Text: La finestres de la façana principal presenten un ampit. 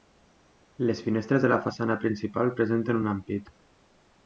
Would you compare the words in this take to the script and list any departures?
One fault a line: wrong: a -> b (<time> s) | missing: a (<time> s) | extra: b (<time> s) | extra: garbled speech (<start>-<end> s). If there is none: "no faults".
wrong: La -> Les (0.9 s)